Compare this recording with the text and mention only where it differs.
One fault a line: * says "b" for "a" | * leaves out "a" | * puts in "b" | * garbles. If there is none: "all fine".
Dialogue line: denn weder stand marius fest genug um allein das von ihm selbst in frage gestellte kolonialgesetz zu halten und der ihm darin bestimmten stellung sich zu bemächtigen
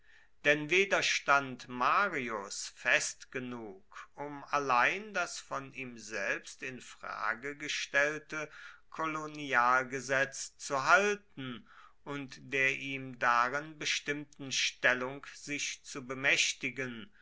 all fine